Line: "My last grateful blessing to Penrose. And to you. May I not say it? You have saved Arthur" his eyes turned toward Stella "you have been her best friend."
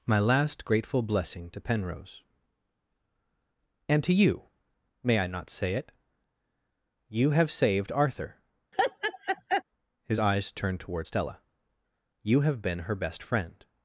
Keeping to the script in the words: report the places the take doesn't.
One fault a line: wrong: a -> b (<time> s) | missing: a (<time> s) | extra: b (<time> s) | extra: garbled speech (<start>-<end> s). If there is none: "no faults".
no faults